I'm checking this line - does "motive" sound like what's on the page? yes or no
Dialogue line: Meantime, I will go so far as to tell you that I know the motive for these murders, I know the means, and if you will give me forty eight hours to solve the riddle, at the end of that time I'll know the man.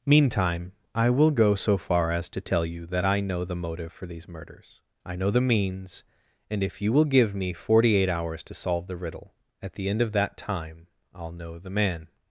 yes